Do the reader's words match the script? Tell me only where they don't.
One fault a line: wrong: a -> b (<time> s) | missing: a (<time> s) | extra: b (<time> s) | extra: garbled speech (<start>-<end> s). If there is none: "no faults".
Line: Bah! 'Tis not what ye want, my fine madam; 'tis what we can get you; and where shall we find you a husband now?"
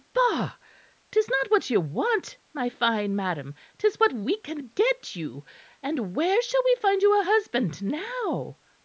no faults